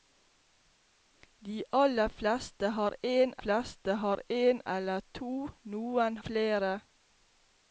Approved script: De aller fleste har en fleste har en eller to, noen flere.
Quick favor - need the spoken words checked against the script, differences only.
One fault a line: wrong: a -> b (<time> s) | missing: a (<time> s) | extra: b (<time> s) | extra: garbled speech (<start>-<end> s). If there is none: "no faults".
no faults